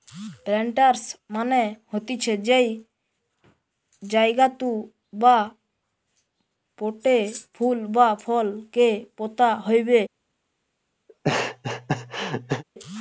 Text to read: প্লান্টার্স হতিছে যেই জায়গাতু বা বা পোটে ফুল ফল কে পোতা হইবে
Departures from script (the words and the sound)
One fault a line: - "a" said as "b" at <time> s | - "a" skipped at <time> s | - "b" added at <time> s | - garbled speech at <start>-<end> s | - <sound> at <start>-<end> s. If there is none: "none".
- "মানে" added at 1.3 s
- "বা" skipped at 5.4 s
- "বা" added at 7.9 s
- laugh at 11.1-12.6 s